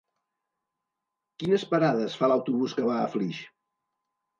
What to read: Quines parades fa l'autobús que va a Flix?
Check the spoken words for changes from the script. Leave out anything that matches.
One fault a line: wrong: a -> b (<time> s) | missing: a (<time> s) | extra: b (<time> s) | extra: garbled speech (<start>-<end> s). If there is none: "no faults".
no faults